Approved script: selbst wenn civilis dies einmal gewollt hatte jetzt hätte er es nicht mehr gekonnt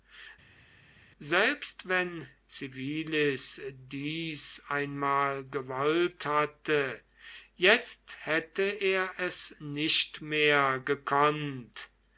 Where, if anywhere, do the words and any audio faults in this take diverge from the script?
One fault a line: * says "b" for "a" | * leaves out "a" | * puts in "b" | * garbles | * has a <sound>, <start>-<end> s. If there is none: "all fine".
all fine